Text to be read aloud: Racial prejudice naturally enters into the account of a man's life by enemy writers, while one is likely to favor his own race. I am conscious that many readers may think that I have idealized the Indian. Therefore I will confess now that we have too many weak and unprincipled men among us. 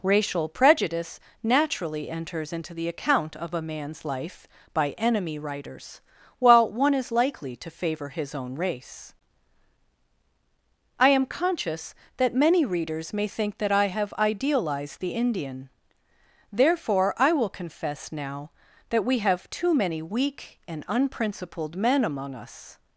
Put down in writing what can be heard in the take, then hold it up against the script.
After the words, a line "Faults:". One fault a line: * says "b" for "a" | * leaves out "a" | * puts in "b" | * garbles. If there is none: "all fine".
Racial prejudice naturally enters into the account of a man's life by enemy writers, while one is likely to favor his own race. I am conscious that many readers may think that I have idealized the Indian. Therefore I will confess now that we have too many weak and unprincipled men among us.
Faults:
all fine